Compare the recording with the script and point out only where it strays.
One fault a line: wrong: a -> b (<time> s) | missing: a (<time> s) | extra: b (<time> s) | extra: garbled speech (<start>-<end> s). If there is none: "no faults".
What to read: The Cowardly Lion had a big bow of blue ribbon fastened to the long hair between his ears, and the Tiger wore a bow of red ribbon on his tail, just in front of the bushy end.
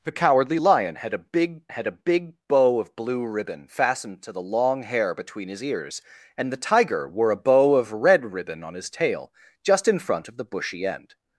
extra: had a big (1.7 s)